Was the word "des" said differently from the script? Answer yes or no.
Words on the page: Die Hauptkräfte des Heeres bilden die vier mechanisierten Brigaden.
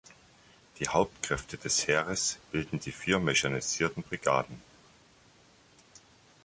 no